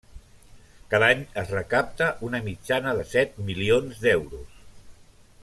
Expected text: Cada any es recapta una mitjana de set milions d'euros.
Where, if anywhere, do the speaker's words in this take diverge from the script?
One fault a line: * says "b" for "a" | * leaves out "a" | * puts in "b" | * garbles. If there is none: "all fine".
all fine